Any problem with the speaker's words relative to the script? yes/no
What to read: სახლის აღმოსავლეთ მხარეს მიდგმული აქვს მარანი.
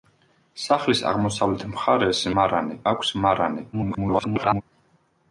yes